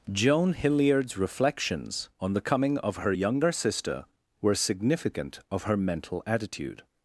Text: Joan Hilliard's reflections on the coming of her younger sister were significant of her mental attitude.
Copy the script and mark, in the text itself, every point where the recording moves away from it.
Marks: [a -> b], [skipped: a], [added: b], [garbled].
Joan Hilliard's reflections on the coming of her younger sister were significant of her mental attitude.